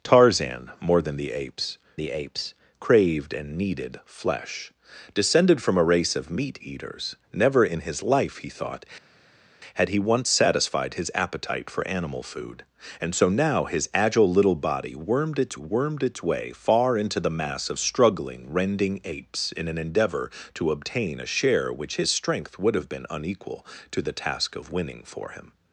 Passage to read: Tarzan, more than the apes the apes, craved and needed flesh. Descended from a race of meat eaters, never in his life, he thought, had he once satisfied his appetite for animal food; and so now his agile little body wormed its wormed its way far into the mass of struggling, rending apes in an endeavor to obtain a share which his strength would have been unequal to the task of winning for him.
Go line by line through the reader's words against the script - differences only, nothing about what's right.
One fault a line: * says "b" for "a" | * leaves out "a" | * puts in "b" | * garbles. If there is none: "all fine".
all fine